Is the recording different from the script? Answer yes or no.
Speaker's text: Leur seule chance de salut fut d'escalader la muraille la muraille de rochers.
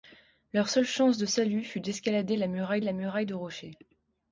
no